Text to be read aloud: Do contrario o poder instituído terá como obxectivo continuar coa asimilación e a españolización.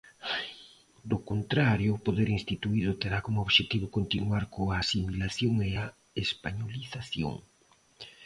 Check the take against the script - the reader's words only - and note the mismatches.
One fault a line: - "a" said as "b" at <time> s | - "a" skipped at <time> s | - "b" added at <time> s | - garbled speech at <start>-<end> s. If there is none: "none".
none